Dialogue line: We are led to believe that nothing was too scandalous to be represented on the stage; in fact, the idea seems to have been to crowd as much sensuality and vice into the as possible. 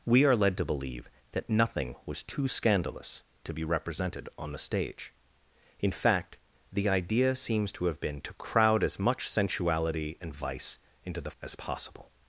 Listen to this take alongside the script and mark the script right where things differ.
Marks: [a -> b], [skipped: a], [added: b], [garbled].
We are led to believe that nothing was too scandalous to be represented on the stage; in fact, the idea seems to have been to crowd as much sensuality and vice into the as possible.